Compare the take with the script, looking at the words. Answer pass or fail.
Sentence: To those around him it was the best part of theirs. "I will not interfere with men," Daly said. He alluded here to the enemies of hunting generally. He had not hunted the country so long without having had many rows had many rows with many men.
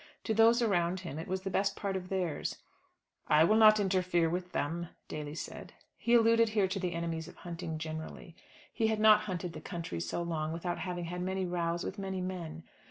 fail